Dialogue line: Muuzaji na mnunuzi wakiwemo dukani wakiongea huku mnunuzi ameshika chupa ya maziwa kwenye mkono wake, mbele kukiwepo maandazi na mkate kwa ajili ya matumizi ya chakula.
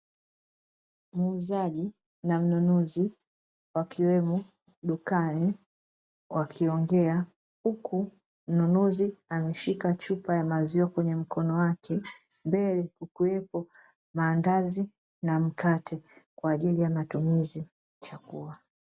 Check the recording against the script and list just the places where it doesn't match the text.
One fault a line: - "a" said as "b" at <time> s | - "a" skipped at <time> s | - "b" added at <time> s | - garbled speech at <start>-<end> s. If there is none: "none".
- "ya" skipped at 17.7 s